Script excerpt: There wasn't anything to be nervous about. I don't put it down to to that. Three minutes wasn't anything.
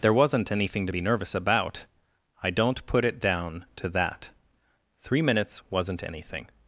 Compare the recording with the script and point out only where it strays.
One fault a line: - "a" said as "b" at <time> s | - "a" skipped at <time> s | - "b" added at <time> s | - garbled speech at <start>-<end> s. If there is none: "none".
- "to" skipped at 3.9 s